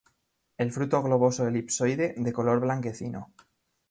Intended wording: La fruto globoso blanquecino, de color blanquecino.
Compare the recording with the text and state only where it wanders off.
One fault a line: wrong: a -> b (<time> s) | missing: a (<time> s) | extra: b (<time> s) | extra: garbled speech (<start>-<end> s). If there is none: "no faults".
wrong: La -> El (0.6 s)
wrong: blanquecino -> elipsoide (1.5 s)